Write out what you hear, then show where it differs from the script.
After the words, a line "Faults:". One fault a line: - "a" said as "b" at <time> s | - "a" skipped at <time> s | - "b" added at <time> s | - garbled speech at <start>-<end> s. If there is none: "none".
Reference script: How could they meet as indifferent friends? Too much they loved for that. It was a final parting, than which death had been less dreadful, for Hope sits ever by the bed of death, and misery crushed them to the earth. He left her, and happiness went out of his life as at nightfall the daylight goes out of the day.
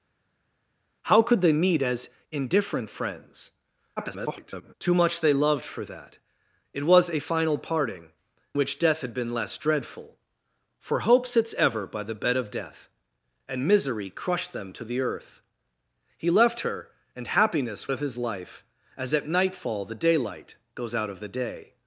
How could they meet as indifferent friends? [garbled] Too much they loved for that. It was a final parting, which death had been less dreadful, for Hope sits ever by the bed of death, and misery crushed them to the earth. He left her, and happiness of his life as at nightfall the daylight goes out of the day.
Faults:
- garbled speech at 4.0-4.7 s
- "than" skipped at 8.1 s
- "went out" skipped at 17.9 s